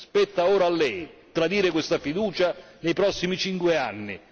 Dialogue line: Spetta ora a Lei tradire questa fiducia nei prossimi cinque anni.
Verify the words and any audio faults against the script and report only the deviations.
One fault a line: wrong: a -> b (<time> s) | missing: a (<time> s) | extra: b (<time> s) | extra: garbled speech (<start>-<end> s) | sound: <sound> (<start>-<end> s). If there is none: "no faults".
no faults